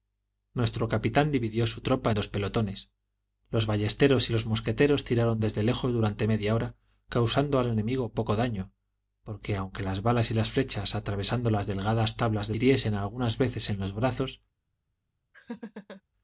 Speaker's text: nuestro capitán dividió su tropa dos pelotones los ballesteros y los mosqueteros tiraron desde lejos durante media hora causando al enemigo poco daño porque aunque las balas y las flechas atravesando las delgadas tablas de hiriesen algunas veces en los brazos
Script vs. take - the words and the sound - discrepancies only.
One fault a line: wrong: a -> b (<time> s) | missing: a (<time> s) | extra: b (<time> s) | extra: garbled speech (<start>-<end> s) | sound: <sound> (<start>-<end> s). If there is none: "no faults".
sound: laugh (15.3-16.0 s)